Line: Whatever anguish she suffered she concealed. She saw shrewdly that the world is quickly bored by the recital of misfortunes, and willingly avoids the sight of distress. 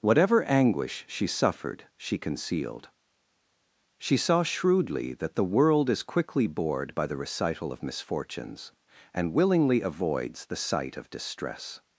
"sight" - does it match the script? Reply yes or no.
yes